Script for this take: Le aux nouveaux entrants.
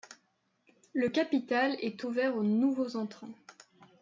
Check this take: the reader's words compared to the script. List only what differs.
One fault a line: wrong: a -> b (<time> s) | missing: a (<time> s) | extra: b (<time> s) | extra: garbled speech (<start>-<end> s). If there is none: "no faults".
extra: capital est ouvert (1.1 s)